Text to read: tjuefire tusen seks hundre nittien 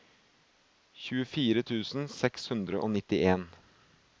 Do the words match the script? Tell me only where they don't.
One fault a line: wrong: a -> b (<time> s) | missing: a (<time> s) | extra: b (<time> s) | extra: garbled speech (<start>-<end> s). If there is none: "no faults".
extra: og (2.8 s)